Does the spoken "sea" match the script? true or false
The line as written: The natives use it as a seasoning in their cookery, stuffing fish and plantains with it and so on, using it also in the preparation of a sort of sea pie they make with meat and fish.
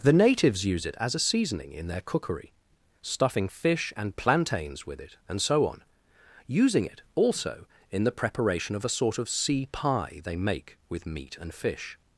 true